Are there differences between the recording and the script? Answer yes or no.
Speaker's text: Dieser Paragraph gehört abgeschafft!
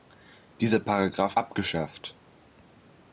yes